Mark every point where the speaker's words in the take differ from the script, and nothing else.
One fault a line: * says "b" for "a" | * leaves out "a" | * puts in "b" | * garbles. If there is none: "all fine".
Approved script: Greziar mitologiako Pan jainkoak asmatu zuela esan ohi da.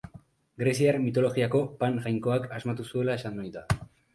all fine